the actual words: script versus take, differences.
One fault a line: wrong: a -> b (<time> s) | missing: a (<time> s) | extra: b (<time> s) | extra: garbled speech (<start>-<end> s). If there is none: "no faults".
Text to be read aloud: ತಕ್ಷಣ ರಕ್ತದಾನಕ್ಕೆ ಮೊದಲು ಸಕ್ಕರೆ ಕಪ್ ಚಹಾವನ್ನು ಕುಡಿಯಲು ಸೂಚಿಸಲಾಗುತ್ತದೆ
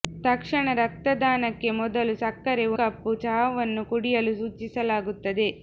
no faults